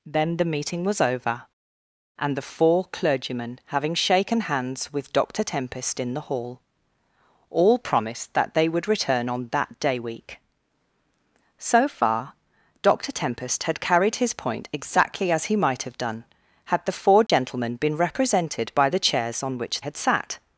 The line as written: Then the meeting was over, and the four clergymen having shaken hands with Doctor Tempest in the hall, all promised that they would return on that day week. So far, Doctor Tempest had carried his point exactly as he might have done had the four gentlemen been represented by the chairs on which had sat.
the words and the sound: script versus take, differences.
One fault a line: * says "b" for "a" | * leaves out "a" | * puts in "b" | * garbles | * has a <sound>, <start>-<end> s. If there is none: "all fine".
* has a dropout, 17.3-17.3 s